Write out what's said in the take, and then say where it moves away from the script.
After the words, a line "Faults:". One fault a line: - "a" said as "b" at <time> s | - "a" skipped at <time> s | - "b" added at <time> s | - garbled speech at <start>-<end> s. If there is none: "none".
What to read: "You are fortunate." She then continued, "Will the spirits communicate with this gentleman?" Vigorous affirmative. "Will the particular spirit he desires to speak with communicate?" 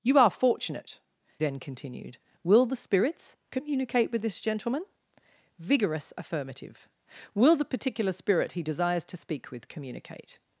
"You are fortunate." Then continued, "Will the spirits communicate with this gentleman?" Vigorous affirmative. "Will the particular spirit he desires to speak with communicate?"
Faults:
- "She" skipped at 1.0 s